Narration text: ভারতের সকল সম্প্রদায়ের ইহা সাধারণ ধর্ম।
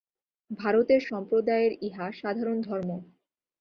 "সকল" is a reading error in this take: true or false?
true